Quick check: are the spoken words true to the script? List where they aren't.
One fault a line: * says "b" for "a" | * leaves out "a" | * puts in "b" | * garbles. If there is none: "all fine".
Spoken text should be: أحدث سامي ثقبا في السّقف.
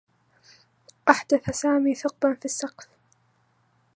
all fine